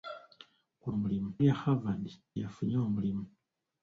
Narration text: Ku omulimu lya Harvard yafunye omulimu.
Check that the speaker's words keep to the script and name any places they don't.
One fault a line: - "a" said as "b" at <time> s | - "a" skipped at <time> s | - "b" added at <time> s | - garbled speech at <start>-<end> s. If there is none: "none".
none